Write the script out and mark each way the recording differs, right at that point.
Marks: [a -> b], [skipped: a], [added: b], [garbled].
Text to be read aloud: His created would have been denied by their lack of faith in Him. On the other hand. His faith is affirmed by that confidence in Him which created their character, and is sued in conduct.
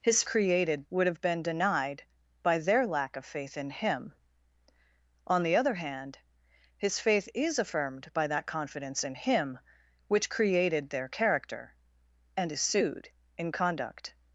His created would have been denied by their lack of faith in Him. On the other hand. His faith is affirmed by that confidence in Him which created their character, and is sued in conduct.